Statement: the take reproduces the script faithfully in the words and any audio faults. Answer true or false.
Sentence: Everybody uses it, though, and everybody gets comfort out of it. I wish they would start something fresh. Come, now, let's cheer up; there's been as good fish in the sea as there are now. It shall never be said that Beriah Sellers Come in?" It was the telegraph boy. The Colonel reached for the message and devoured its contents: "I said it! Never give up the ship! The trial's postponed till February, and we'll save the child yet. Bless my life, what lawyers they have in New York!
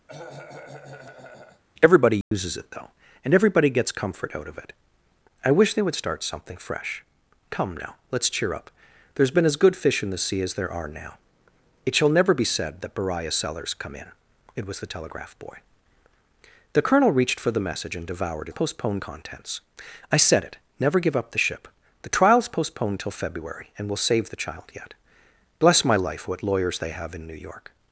false